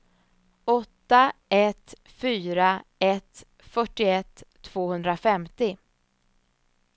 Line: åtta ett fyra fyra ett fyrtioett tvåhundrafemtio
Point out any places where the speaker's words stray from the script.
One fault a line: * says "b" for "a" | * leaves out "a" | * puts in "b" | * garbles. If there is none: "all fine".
* leaves out "fyra"